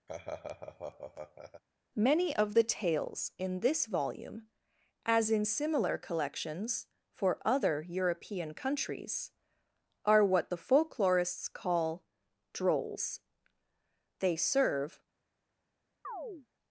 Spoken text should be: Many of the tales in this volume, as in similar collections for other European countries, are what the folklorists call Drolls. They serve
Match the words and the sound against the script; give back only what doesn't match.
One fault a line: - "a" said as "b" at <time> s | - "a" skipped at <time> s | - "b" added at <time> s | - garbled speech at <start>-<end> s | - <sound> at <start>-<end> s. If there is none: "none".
- laugh at 0.1-1.6 s
- chirp at 16.0-16.5 s